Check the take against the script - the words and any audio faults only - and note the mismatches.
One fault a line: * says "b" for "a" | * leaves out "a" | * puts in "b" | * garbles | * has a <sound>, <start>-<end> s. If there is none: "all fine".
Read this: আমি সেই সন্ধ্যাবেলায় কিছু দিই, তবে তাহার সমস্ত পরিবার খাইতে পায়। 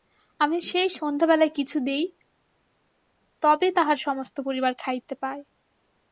all fine